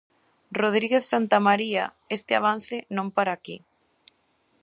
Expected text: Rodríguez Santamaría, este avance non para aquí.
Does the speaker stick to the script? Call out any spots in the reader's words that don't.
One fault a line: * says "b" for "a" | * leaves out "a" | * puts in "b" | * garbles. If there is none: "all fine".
all fine